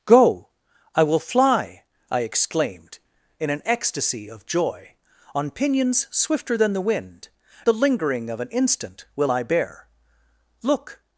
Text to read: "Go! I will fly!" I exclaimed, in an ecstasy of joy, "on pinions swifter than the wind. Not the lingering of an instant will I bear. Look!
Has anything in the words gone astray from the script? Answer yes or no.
yes